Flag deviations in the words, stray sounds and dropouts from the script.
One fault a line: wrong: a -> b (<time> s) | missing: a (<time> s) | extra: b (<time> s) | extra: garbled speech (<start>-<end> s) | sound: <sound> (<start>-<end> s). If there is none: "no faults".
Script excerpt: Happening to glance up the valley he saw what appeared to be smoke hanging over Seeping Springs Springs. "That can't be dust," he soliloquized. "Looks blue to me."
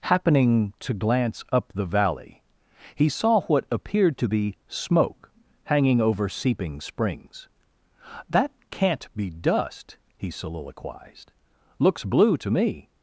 missing: Springs (7.5 s)